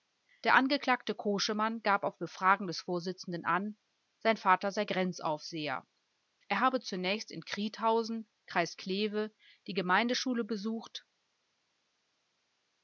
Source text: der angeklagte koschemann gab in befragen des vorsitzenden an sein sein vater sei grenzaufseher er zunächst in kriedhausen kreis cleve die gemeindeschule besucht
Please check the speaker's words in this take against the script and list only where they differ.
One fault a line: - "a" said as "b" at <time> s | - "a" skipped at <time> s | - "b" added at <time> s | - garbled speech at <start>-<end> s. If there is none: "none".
- "in" said as "auf" at 2.0 s
- "sein" skipped at 4.3 s
- "habe" added at 6.6 s